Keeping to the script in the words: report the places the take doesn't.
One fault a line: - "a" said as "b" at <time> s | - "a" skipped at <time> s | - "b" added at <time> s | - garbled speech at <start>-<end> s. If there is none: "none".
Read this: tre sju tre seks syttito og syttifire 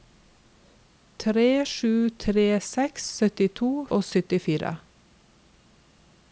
none